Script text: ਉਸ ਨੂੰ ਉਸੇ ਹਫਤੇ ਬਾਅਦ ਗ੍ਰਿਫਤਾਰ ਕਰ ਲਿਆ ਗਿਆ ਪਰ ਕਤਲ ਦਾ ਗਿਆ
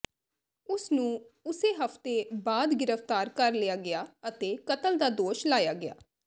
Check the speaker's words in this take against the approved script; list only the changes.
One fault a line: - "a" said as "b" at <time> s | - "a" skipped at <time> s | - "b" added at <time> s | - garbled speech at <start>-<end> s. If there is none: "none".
- "ਪਰ" said as "ਅਤੇ" at 4.3 s
- "ਦੋਸ਼ ਲਾਇਆ" added at 5.1 s